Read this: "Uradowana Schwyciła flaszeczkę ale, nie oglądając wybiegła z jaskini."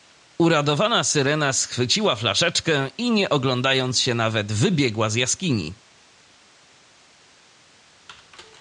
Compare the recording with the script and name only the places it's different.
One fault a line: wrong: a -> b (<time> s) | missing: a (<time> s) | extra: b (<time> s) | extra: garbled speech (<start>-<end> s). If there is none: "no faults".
extra: Syrena (1.0 s)
wrong: ale -> i (3.0 s)
extra: się nawet (4.0 s)